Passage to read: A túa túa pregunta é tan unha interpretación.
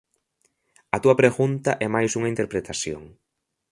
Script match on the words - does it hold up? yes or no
no